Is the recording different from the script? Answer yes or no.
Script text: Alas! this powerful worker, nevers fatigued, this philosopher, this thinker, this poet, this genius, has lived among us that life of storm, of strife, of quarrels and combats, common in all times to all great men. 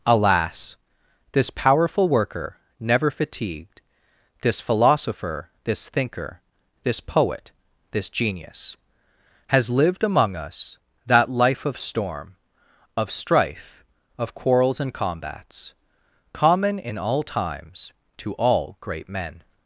yes